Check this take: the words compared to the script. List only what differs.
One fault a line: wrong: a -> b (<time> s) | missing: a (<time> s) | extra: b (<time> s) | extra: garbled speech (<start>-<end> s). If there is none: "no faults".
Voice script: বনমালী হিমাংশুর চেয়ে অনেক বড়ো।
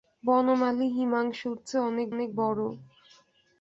extra: অনেক (2.1 s)